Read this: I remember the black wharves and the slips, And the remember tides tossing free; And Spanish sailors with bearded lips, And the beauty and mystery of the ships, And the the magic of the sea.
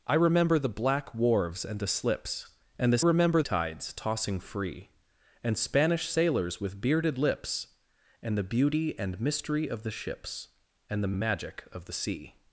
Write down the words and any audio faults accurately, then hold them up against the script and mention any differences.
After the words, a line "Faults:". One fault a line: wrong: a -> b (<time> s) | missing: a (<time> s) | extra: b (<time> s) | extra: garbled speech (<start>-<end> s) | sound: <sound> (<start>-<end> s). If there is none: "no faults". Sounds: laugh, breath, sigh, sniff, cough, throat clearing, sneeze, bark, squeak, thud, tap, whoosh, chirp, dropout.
I remember the black wharves and the slips, And the remember tides tossing free; And Spanish sailors with bearded lips, And the beauty and mystery of the ships, And the the magic of the sea.
Faults:
no faults